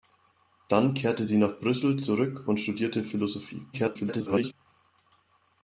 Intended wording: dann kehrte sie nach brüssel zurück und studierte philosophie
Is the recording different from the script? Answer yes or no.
yes